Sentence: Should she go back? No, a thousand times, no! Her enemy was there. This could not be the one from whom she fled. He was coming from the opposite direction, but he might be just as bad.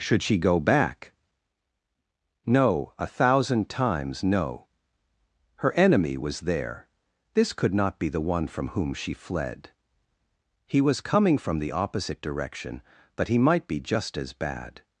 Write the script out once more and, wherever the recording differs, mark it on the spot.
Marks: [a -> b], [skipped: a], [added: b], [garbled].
Should she go back? No, a thousand times, no! Her enemy was there. This could not be the one from whom she fled. He was coming from the opposite direction, but he might be just as bad.